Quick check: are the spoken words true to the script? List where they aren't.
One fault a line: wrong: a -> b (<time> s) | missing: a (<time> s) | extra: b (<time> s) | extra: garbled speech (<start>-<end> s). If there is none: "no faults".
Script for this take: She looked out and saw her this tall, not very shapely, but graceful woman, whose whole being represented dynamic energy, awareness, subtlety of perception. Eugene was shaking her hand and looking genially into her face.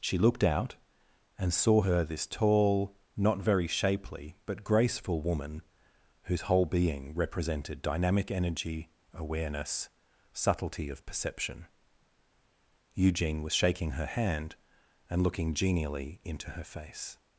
no faults